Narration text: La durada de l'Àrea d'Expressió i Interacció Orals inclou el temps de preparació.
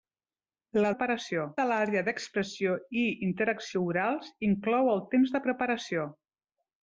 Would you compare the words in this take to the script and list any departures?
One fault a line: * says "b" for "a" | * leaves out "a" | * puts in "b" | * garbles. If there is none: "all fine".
* says "preparació" for "durada"